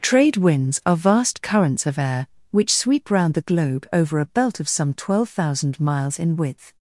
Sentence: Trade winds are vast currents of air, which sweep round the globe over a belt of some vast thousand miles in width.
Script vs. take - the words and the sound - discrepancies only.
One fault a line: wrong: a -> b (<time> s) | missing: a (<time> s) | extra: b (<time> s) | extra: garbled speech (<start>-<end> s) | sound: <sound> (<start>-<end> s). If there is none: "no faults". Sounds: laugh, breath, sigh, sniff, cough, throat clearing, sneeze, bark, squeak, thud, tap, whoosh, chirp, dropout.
wrong: vast -> twelve (5.0 s)